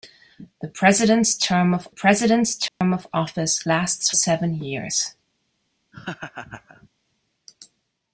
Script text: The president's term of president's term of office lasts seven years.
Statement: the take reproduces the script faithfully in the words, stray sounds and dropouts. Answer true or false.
false